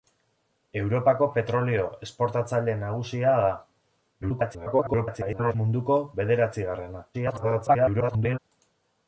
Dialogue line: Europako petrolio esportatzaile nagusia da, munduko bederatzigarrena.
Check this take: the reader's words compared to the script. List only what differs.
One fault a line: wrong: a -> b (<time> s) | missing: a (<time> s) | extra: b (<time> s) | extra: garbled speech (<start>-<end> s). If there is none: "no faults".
extra: garbled speech (4.2-5.5 s)
extra: garbled speech (7.1-8.4 s)